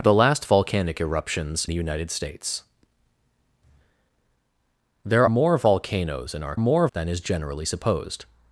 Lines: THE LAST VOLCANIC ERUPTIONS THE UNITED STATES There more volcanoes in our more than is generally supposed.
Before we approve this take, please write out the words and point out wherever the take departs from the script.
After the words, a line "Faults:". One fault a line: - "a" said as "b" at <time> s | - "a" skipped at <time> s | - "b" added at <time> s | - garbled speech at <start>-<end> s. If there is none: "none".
THE LAST VOLCANIC ERUPTIONS THE UNITED STATES There more volcanoes in our more than is generally supposed.
Faults:
none